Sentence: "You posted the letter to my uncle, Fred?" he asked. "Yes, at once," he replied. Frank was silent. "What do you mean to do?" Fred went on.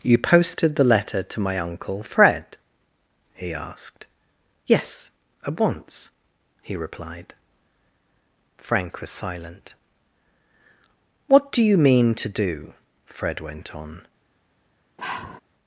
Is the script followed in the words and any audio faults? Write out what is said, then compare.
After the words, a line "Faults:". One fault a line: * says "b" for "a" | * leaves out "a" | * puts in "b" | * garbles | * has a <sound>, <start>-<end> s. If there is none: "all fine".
"You posted the letter to my uncle, Fred?" he asked. "Yes, at once," he replied. Frank was silent. "What do you mean to do?" Fred went on.
Faults:
* has a sigh, 15.0-15.4 s